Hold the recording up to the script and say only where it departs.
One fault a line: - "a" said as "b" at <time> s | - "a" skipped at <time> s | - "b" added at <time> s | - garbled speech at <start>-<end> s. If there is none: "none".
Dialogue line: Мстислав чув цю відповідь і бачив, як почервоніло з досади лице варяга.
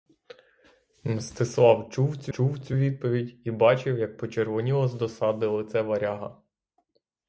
- "чув цю" added at 2.3 s